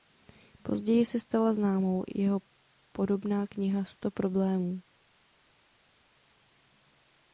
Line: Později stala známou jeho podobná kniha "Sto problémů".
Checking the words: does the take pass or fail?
fail